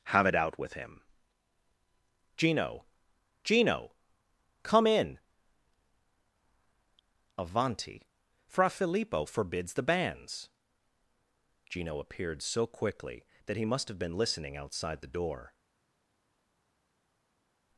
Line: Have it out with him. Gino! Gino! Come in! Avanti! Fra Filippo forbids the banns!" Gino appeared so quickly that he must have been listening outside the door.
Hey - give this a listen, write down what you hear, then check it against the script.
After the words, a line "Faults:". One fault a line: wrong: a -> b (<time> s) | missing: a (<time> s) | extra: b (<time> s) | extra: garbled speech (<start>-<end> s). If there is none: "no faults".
Have it out with him. Gino! Gino! Come in! Avanti! Fra Filippo forbids the banns!" Gino appeared so quickly that he must have been listening outside the door.
Faults:
no faults